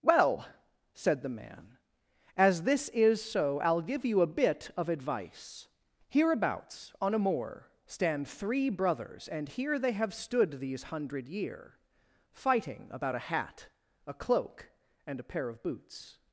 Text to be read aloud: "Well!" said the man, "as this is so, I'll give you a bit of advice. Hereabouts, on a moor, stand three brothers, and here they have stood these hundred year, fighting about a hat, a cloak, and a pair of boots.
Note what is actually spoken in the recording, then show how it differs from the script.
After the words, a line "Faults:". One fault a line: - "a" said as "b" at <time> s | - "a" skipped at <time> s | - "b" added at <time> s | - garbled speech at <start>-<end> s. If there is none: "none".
"Well!" said the man, "as this is so, I'll give you a bit of advice. Hereabouts, on a moor, stand three brothers, and here they have stood these hundred year, fighting about a hat, a cloak, and a pair of boots.
Faults:
none